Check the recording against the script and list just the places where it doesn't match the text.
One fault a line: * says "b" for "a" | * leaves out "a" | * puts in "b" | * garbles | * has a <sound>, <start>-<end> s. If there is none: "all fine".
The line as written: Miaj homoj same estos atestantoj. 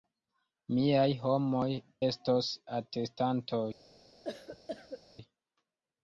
* leaves out "same"
* has a cough, 4.2-5.0 s